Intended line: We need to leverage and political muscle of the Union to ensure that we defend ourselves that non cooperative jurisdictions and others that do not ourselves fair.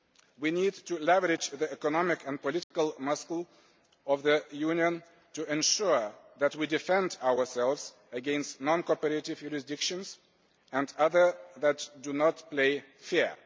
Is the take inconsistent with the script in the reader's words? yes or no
yes